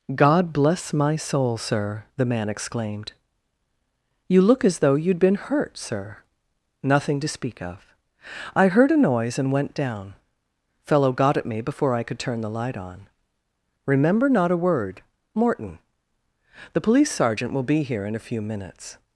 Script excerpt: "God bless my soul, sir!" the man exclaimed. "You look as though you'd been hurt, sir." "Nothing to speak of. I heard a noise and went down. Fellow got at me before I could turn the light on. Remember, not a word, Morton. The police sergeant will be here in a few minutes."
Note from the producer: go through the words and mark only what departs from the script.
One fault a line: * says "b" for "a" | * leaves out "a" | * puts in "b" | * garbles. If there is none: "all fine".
all fine